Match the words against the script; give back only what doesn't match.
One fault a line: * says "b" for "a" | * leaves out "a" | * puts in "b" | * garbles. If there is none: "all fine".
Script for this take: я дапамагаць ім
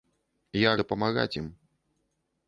all fine